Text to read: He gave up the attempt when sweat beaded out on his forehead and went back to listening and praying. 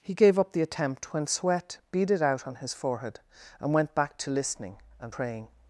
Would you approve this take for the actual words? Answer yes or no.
yes